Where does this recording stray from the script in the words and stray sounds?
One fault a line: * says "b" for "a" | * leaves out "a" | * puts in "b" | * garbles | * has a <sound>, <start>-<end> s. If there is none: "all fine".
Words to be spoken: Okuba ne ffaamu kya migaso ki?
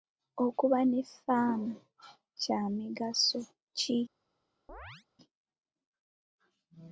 * has a chirp, 4.7-5.1 s